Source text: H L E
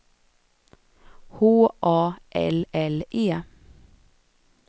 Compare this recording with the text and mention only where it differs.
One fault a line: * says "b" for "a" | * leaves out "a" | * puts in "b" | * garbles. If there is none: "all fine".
* puts in "A L"